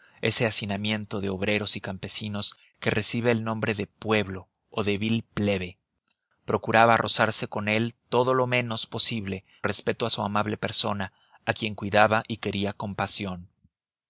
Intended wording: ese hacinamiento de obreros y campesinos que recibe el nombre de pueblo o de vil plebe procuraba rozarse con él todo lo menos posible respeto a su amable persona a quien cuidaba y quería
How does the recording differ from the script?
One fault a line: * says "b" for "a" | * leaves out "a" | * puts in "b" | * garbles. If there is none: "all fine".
all fine